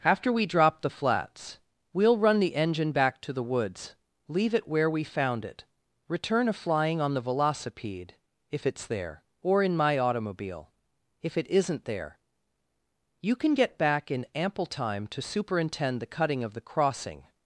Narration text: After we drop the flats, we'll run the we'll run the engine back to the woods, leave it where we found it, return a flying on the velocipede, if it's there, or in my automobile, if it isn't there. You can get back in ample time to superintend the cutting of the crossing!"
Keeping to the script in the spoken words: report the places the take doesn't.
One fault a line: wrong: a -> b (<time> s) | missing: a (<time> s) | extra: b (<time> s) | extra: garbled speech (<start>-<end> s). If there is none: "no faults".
missing: we'll run the (2.5 s)